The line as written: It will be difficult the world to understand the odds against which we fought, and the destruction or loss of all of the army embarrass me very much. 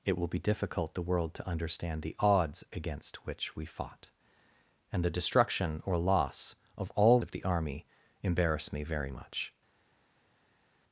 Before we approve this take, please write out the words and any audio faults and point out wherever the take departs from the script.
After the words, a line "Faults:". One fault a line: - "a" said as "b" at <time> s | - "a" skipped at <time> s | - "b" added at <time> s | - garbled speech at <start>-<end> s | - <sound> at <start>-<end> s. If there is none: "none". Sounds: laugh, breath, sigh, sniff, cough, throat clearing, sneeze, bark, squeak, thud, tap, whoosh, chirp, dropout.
It will be difficult the world to understand the odds against which we fought, and the destruction or loss of all of the army embarrass me very much.
Faults:
none